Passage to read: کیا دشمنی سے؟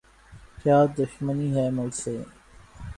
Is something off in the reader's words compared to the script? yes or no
yes